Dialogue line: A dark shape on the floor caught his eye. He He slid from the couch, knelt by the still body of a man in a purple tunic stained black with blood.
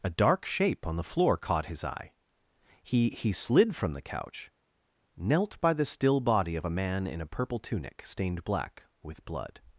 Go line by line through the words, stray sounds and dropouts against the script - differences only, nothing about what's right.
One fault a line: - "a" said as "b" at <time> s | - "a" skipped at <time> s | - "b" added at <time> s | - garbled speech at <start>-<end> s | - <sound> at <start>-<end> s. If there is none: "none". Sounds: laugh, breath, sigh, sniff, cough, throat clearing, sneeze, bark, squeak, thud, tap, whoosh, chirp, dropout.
none